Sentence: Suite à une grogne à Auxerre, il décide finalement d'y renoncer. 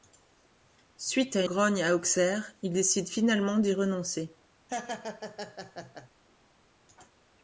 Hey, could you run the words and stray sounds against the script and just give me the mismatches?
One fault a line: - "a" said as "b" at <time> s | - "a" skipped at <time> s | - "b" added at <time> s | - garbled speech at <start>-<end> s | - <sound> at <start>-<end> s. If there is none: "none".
- "une" skipped at 1.4 s
- laugh at 4.7-6.1 s